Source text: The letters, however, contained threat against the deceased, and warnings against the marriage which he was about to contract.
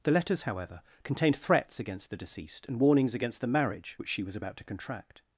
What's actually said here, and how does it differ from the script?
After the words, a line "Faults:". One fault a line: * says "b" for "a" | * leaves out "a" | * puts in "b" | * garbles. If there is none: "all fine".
The letters, however, contained threats against the deceased, and warnings against the marriage which she was about to contract.
Faults:
* says "threats" for "threat"
* says "she" for "he"